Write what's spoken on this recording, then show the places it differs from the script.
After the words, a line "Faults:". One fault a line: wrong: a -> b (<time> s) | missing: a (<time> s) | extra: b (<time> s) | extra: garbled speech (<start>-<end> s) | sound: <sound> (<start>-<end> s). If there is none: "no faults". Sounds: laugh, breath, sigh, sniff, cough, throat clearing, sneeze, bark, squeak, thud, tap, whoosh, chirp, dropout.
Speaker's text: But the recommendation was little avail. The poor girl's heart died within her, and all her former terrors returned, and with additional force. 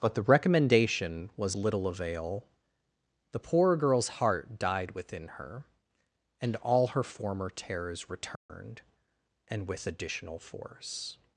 But the recommendation was little avail. The poor girl's heart died within her, and all her former terrors returned, and with additional force.
Faults:
sound: dropout (8.4-8.5 s)